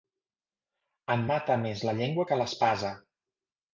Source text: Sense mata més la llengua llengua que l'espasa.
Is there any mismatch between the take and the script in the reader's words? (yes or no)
yes